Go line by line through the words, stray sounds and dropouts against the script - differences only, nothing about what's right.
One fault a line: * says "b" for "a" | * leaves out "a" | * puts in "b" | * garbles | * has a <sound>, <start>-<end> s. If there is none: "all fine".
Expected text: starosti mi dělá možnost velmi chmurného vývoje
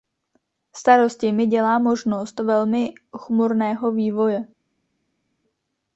all fine